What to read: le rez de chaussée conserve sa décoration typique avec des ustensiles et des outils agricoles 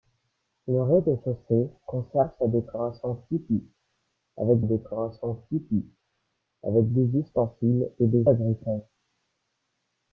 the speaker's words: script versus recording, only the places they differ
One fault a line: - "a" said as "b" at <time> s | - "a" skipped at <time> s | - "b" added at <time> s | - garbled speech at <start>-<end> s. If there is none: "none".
- "décoration typique avec" added at 4.6 s
- "outils" skipped at 8.3 s